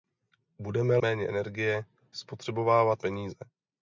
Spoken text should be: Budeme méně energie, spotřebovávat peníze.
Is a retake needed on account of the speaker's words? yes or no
no